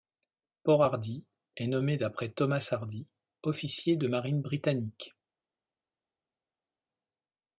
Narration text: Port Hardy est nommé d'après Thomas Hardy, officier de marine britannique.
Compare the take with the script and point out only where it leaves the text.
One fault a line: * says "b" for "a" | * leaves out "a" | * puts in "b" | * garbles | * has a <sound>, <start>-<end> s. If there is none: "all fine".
all fine